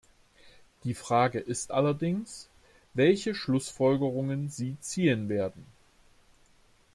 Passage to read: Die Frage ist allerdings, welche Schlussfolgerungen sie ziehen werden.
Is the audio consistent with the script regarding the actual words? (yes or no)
yes